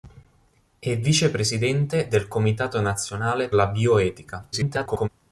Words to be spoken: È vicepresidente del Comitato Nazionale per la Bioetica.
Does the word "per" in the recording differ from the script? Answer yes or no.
yes